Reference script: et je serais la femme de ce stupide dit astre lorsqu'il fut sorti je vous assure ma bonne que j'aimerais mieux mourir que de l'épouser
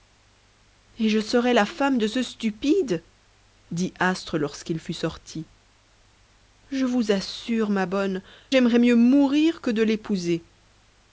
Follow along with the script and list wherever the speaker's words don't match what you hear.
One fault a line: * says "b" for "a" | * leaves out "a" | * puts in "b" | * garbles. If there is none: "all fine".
* leaves out "que"